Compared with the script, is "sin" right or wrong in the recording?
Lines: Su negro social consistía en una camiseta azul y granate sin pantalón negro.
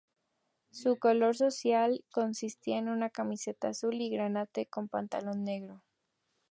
wrong